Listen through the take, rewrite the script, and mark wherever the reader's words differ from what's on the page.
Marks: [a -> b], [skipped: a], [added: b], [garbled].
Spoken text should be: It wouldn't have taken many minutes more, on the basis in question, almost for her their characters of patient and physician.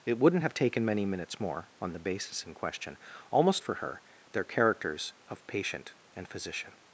It wouldn't have taken many minutes more, on the basis in question, almost for her their characters of patient and physician.